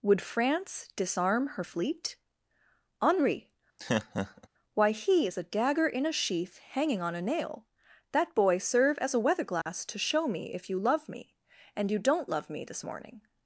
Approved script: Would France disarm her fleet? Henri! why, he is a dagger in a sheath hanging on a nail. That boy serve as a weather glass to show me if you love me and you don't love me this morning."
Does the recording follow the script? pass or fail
pass